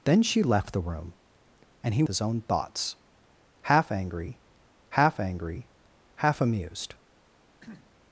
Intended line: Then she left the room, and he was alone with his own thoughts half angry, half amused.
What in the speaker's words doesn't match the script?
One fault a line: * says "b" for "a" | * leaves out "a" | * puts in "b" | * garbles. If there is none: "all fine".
* leaves out "was alone with"
* puts in "angry half"